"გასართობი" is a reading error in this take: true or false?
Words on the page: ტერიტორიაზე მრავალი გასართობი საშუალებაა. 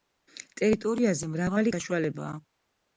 true